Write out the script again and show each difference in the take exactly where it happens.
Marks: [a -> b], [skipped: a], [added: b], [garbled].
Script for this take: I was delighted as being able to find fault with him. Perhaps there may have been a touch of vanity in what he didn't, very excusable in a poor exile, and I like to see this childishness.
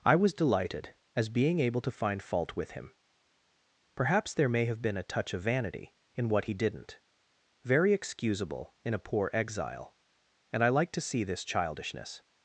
I was delighted as being able to find fault with him. Perhaps there may have been a touch of vanity in what he didn't, very excusable in a poor exile, and I like to see this childishness.